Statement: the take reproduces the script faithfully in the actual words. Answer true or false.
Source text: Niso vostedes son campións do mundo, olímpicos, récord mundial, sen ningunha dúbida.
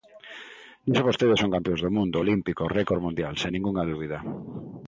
true